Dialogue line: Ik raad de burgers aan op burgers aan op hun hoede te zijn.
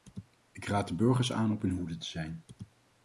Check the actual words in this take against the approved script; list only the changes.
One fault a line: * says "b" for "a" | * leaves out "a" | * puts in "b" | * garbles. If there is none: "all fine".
* leaves out "burgers aan op"